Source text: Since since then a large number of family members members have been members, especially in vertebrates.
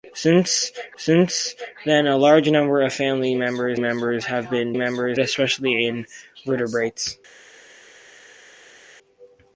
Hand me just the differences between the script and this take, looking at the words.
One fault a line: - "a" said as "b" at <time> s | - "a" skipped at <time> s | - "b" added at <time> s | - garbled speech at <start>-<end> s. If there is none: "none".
none